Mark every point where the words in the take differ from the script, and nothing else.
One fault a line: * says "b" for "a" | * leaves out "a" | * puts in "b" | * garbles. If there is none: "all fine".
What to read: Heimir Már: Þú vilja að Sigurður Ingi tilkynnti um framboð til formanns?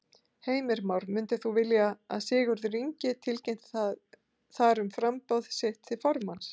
* puts in "Myndir"
* puts in "þar"
* puts in "sitt"